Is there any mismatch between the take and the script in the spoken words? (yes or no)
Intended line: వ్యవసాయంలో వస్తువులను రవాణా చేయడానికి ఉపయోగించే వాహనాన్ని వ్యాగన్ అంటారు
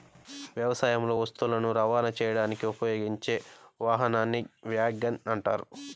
no